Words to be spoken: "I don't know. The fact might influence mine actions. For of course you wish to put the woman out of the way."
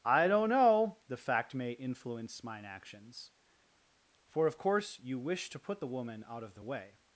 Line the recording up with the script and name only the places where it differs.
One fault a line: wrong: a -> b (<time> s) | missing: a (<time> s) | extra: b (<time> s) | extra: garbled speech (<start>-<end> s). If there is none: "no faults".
wrong: might -> may (1.5 s)